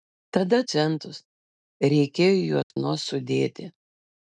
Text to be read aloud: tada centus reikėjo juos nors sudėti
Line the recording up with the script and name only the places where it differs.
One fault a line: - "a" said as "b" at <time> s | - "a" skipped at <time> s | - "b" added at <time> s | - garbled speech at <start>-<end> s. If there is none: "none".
none